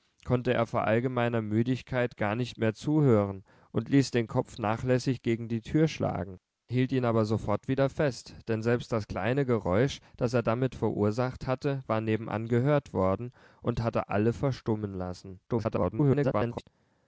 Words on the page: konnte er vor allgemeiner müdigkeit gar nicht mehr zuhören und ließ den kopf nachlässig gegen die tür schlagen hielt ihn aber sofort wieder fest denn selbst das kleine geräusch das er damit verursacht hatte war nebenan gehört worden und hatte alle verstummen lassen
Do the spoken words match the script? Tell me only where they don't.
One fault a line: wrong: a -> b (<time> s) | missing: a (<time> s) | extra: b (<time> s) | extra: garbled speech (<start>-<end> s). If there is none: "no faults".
extra: garbled speech (15.5-16.6 s)